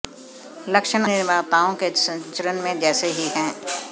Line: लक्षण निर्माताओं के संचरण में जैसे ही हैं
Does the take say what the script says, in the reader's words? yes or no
yes